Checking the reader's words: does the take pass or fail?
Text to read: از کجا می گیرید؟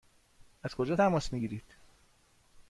fail